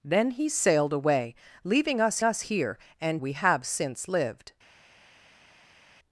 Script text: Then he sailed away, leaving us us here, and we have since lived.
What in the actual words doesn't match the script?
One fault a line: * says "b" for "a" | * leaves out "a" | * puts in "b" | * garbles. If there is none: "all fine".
all fine